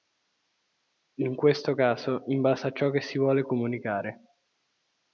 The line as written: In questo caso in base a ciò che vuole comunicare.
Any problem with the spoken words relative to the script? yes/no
yes